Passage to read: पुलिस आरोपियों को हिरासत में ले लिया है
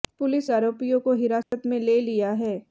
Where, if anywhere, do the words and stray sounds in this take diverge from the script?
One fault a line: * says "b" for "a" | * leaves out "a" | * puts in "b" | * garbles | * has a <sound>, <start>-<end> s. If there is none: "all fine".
* has a dropout, 1.4-1.5 s